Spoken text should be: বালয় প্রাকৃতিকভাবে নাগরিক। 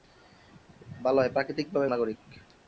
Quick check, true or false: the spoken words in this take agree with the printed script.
true